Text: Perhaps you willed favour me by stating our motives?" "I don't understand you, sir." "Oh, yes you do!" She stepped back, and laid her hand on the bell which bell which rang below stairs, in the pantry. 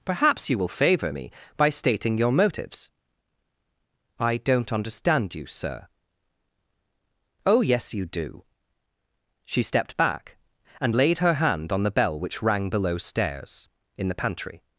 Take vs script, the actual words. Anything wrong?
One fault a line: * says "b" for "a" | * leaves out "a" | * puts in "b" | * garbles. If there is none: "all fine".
* says "will" for "willed"
* says "your" for "our"
* leaves out "bell which"